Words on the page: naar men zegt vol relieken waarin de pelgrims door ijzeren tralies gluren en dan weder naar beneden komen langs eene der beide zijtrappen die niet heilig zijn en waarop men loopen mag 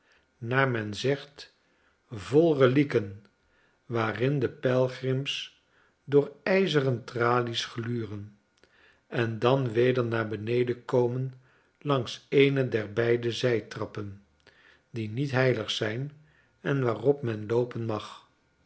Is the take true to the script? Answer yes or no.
yes